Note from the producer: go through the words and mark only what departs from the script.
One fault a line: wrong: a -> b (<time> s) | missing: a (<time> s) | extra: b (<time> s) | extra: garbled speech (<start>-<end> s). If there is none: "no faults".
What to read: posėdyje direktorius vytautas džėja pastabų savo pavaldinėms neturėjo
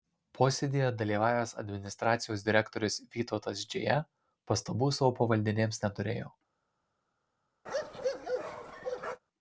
extra: dalyvavęs administracijos (1.0 s)